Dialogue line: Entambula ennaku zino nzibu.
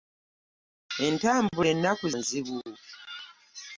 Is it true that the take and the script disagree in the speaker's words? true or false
true